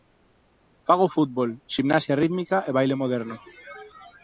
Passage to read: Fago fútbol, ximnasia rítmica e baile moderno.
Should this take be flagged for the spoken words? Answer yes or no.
no